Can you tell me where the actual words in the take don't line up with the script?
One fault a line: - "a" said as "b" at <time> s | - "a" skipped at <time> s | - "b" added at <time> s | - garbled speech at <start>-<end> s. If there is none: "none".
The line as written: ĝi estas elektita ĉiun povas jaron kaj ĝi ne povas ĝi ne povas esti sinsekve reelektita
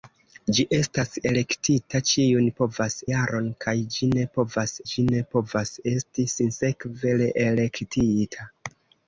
none